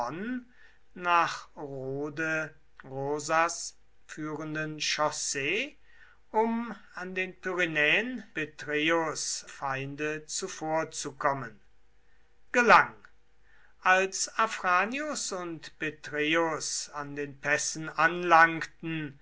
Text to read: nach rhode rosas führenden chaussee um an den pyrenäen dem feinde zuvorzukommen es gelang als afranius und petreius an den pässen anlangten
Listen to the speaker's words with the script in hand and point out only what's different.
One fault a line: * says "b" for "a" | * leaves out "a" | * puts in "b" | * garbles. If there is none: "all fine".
* says "petreius" for "dem"
* leaves out "es"